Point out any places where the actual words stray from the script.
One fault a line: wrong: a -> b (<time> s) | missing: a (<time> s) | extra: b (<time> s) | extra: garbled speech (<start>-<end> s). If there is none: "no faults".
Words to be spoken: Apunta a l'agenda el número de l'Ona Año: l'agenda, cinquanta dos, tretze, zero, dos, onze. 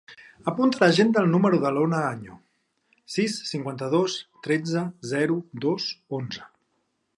wrong: l'agenda -> sis (3.2 s)